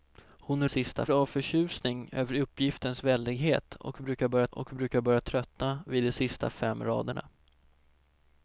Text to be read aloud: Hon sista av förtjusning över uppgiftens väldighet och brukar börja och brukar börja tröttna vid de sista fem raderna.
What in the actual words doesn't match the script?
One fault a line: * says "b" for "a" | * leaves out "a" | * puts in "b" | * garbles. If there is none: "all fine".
all fine